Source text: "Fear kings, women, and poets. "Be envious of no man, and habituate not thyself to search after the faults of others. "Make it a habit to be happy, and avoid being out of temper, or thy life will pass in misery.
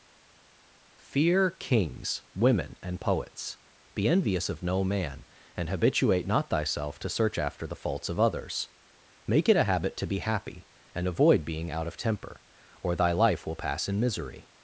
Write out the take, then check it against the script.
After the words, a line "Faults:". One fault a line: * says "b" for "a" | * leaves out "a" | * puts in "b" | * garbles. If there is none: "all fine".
"Fear kings, women, and poets. "Be envious of no man, and habituate not thyself to search after the faults of others. "Make it a habit to be happy, and avoid being out of temper, or thy life will pass in misery.
Faults:
all fine